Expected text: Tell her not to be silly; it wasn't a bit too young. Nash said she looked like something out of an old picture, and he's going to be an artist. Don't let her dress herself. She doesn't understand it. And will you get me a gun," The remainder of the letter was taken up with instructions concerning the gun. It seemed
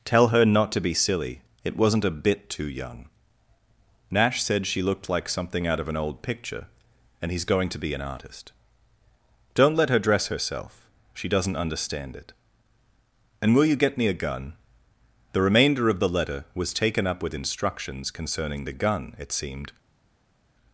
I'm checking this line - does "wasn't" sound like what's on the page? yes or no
yes